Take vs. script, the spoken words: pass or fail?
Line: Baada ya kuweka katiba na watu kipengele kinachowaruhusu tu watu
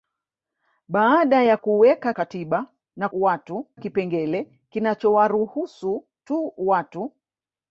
pass